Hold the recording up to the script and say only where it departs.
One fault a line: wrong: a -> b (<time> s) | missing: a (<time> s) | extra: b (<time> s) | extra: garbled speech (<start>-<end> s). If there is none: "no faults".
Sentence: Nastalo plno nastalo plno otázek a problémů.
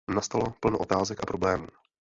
missing: nastalo plno (0.8 s)